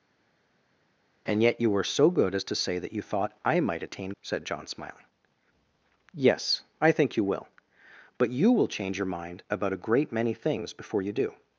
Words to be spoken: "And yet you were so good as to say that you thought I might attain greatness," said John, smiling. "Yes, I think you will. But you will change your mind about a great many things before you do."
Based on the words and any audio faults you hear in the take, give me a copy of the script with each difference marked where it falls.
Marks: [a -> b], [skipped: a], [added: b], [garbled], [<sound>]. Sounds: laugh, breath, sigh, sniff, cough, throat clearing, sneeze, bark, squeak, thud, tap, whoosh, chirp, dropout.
"And yet you were so good as to say that you thought I might attain [skipped: greatness,"] said John, smiling. "Yes, I think you will. But you will change your mind about a great many things before you do."